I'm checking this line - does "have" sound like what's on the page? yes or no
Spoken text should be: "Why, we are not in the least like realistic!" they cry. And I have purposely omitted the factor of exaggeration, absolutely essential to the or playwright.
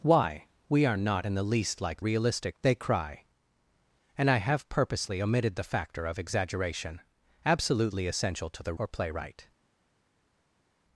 yes